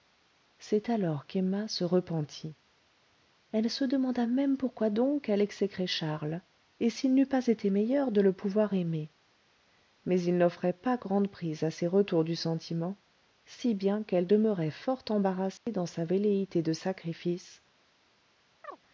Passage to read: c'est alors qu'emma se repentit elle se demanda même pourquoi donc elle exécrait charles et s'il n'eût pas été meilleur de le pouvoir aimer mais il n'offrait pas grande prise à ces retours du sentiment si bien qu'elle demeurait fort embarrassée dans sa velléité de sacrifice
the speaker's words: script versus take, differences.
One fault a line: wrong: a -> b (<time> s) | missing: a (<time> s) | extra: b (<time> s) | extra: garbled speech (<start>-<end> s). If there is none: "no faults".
no faults